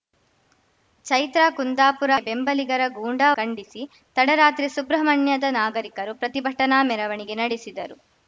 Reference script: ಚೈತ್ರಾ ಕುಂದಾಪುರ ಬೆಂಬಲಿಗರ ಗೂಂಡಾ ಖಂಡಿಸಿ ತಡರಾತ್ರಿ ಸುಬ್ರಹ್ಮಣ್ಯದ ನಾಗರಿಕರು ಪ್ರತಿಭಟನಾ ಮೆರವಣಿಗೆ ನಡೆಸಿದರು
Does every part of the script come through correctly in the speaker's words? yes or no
yes